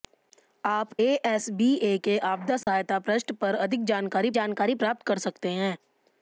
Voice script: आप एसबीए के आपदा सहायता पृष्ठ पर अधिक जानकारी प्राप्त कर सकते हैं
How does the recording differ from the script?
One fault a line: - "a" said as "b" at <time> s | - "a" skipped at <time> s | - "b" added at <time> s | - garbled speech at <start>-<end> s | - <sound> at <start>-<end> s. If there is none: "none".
- dropout at 2.6-2.7 s
- "जानकारी" added at 4.3 s